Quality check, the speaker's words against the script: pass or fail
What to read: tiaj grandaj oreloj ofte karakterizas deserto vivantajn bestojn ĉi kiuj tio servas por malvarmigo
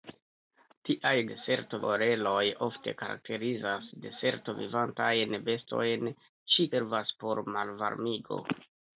fail